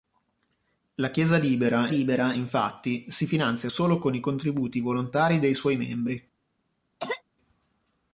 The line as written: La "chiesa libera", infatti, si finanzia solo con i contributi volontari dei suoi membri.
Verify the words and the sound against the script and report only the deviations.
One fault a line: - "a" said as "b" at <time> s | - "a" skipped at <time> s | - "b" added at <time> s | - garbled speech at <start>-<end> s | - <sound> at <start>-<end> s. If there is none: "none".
- "libera" added at 1.9 s
- cough at 7.0-7.2 s